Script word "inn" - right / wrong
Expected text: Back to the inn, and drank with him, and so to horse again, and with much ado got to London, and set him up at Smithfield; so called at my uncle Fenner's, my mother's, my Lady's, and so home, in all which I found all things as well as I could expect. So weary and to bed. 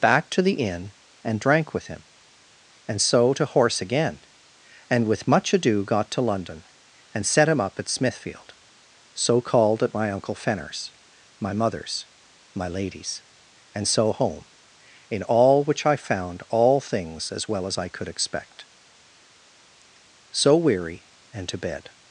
right